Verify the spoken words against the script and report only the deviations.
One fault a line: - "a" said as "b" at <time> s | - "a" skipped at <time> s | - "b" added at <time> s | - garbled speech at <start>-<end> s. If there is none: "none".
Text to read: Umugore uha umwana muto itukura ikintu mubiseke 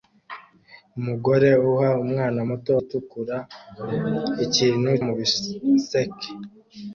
none